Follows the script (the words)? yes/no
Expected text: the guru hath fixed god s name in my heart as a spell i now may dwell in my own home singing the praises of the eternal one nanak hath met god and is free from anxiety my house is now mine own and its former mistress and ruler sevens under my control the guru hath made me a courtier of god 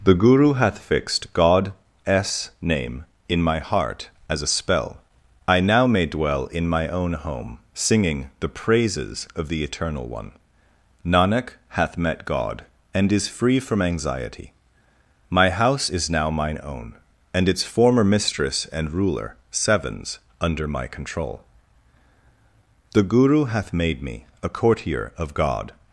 yes